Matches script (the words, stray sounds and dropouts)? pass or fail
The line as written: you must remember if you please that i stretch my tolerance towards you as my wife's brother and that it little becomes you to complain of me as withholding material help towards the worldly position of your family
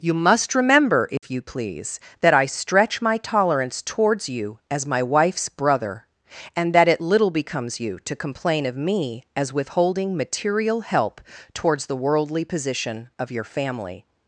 fail